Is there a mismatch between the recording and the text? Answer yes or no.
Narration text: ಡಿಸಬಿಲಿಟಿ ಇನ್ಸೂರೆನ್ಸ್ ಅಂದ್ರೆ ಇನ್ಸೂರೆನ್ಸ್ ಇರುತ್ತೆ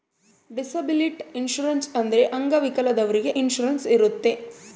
yes